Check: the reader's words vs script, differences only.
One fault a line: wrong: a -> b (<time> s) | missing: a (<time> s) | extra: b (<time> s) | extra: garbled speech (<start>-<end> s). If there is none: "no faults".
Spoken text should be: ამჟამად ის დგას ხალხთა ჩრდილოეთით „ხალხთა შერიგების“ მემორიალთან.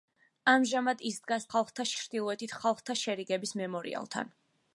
no faults